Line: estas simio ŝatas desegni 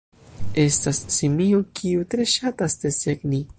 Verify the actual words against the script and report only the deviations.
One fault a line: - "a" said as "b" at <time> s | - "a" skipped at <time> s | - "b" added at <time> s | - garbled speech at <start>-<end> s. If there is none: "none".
- "kiu tre" added at 1.8 s